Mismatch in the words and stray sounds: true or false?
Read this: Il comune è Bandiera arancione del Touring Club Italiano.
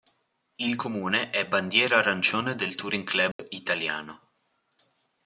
true